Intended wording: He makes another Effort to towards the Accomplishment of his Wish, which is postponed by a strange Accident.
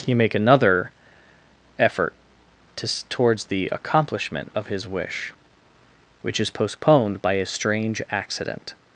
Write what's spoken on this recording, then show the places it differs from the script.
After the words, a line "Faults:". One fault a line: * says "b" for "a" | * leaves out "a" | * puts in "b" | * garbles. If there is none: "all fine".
He make another Effort to towards the Accomplishment of his Wish, which is postponed by a strange Accident.
Faults:
* says "make" for "makes"